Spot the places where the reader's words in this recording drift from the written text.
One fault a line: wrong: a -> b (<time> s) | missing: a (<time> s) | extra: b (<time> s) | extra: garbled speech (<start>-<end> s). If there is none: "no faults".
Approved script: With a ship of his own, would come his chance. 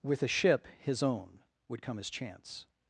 missing: of (0.7 s)